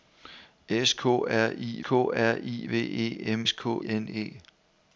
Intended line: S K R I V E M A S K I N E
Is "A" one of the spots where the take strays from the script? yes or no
yes